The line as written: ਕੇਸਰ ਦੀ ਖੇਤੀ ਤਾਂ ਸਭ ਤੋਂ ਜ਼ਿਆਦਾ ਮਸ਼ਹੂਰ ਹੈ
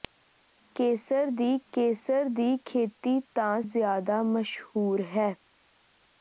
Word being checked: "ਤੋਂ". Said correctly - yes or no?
no